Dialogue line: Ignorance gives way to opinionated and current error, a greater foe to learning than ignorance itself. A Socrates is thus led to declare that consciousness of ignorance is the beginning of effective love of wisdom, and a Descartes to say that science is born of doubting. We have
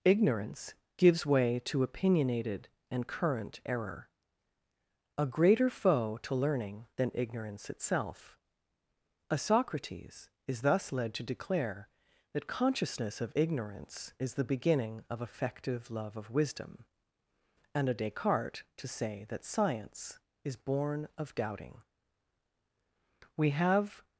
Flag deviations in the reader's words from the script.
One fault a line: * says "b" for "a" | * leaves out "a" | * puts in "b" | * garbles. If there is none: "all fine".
all fine